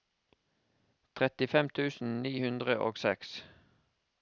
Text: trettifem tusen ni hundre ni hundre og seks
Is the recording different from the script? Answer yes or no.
yes